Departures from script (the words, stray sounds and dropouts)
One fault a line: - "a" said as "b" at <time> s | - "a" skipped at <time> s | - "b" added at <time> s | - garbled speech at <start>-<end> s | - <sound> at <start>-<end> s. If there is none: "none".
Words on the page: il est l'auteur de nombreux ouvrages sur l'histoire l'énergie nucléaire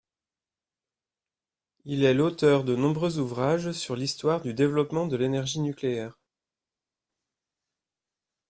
- "du développement de" added at 4.4 s